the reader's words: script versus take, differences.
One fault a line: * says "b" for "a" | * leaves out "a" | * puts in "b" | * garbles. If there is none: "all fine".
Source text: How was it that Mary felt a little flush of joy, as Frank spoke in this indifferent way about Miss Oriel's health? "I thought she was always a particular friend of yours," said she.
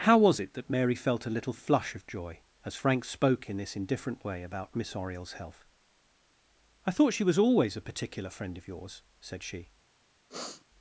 all fine